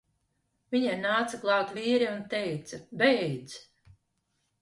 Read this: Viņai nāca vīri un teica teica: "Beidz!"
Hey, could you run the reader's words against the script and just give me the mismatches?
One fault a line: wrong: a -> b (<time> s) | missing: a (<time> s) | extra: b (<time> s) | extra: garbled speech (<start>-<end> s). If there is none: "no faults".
extra: klāt (1.4 s)
missing: teica (2.8 s)